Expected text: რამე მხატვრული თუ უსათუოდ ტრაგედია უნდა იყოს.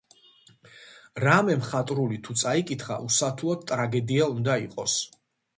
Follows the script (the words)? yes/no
no